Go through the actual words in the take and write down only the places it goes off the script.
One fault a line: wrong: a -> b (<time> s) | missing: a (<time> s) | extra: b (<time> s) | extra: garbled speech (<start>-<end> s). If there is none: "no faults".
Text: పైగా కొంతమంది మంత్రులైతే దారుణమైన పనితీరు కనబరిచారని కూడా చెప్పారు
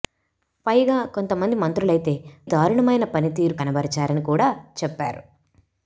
no faults